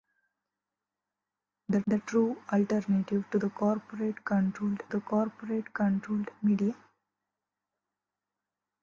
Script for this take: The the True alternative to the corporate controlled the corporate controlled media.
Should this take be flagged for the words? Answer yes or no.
no